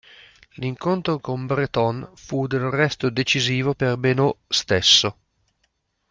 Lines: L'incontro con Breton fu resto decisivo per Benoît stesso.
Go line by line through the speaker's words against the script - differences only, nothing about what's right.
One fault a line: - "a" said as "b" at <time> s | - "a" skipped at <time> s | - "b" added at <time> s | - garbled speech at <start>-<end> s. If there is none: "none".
- "del" added at 2.5 s